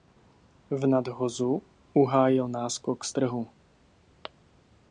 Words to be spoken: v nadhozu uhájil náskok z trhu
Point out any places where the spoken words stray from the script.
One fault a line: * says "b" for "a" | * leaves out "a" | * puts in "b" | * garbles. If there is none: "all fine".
all fine